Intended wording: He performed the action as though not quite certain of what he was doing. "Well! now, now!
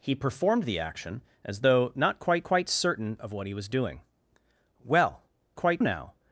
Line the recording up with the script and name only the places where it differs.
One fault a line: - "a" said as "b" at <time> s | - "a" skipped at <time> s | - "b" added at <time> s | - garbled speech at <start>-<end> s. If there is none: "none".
- "quite" added at 2.4 s
- "now" said as "quite" at 5.5 s